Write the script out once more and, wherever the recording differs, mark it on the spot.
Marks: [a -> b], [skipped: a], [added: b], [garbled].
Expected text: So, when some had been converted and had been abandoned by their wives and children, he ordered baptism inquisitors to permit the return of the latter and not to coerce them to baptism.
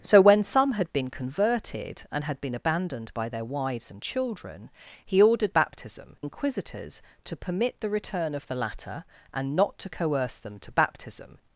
So, when some had been converted and had been abandoned by their wives and children, he ordered baptism inquisitors to permit the return of the latter and not to coerce them to baptism.